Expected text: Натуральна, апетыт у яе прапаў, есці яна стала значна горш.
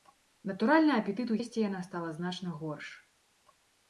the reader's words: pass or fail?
fail